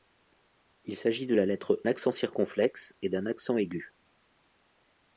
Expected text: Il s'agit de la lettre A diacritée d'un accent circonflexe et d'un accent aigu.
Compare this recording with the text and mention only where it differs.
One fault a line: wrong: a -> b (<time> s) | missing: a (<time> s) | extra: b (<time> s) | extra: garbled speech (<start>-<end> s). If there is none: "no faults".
missing: A diacritée d'un (1.8 s)